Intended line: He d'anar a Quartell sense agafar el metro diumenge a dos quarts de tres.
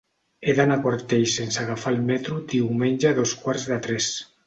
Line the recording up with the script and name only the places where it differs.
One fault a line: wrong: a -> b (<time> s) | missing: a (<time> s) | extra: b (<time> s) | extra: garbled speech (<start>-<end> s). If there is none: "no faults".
no faults